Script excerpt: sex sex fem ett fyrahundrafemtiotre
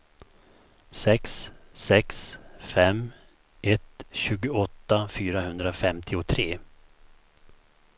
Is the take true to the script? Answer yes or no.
no